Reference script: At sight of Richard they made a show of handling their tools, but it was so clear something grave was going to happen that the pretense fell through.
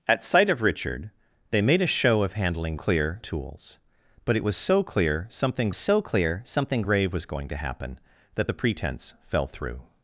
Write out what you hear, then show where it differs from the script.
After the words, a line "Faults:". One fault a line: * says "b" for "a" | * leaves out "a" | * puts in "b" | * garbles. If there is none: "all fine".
At sight of Richard they made a show of handling clear tools, but it was so clear something so clear something grave was going to happen that the pretense fell through.
Faults:
* says "clear" for "their"
* puts in "so clear something"